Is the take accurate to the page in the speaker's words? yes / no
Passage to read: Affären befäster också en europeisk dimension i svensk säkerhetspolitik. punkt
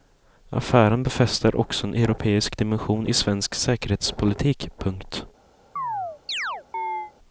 yes